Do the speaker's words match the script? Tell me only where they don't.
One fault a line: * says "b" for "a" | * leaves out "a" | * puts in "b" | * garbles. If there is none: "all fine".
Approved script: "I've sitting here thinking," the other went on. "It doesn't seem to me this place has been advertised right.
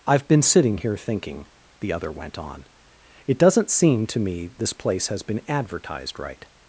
* puts in "been"